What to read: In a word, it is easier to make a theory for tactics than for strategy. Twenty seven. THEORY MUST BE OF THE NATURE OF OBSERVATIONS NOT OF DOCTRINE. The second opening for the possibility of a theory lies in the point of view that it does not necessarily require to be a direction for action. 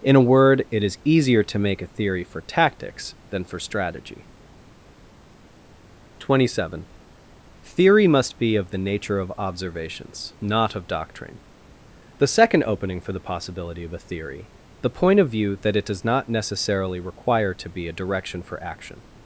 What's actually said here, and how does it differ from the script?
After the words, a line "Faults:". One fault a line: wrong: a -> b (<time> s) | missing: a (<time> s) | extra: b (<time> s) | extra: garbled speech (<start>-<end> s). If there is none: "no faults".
In a word, it is easier to make a theory for tactics than for strategy. Twenty seven. THEORY MUST BE OF THE NATURE OF OBSERVATIONS NOT OF DOCTRINE. The second opening for the possibility of a theory the point of view that it does not necessarily require to be a direction for action.
Faults:
missing: lies in (14.5 s)